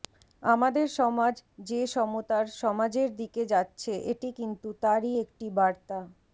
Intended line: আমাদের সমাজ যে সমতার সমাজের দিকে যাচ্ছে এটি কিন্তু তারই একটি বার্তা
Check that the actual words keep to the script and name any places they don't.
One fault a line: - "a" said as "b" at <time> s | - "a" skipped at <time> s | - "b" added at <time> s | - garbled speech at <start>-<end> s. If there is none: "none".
none